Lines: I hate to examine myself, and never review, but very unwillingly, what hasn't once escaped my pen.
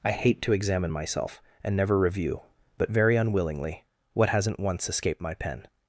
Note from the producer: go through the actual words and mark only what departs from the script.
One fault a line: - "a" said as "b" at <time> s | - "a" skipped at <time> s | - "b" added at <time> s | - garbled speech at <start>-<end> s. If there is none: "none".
none